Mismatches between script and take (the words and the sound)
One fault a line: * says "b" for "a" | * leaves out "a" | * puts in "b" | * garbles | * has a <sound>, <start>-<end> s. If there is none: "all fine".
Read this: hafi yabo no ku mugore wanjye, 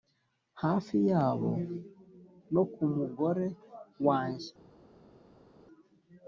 all fine